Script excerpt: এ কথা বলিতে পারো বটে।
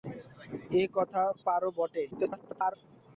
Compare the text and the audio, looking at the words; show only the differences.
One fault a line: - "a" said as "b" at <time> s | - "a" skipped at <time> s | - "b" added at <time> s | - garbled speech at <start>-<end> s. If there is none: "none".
- "বলিতে" skipped at 1.2 s
- garbled speech at 2.1-2.7 s